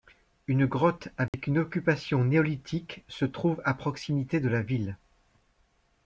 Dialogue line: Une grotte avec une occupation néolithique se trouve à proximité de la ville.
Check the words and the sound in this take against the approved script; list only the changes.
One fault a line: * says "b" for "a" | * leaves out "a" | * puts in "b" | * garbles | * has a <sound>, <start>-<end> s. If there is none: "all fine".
* has a dropout, 1.3-1.3 s